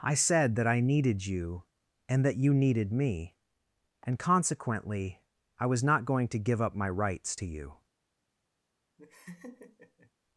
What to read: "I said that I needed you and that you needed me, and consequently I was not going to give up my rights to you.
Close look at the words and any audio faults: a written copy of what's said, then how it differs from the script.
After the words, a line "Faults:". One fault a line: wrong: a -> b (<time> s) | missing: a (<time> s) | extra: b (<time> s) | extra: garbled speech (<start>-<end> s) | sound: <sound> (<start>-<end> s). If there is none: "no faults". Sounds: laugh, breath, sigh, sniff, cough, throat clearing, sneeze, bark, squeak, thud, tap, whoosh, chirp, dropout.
"I said that I needed you and that you needed me, and consequently I was not going to give up my rights to you.
Faults:
sound: laugh (9.0-10.1 s)